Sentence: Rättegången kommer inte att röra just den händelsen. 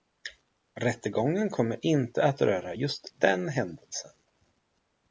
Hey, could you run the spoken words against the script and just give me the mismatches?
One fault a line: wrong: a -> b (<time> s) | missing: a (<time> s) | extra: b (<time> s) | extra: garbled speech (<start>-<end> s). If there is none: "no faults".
no faults